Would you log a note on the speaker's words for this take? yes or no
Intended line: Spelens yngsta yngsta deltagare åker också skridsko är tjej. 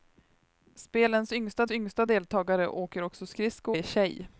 no